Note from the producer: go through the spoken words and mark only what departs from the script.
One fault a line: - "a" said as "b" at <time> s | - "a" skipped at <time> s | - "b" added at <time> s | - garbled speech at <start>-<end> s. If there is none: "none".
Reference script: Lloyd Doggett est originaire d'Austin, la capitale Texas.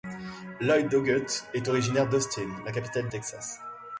none